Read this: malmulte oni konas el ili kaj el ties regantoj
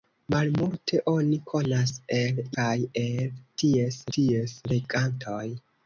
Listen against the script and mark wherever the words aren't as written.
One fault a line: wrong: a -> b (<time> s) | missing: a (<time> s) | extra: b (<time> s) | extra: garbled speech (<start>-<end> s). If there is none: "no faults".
missing: ili (2.4 s)
extra: ties (4.2 s)